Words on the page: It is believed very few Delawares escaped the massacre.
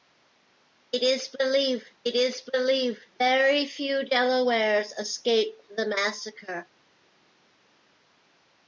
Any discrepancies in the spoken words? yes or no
yes